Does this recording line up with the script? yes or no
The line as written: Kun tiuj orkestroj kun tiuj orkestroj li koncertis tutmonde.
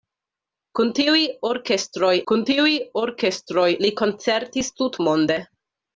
yes